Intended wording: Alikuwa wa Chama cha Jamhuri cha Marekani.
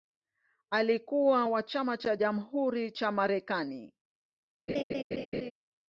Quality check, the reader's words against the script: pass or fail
pass